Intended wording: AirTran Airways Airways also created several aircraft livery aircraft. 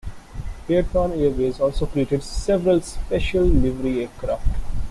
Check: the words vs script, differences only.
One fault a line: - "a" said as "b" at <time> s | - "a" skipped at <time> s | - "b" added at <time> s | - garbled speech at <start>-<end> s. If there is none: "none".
- "Airways" skipped at 1.6 s
- "aircraft" said as "special" at 2.8 s